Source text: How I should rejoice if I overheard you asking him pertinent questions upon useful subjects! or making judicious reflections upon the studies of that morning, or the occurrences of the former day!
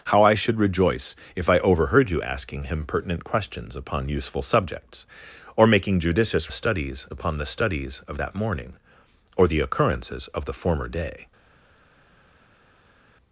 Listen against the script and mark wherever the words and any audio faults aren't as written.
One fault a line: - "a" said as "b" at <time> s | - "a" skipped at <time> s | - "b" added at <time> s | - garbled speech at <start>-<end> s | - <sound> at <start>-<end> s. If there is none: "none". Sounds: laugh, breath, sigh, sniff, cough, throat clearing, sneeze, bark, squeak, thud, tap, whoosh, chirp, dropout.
- "reflections" said as "studies" at 6.5 s